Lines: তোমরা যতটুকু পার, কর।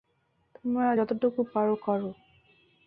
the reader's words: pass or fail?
pass